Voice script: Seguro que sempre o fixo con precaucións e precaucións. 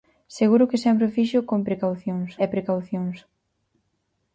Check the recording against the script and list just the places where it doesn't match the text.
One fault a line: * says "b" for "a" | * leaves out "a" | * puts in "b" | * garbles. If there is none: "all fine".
all fine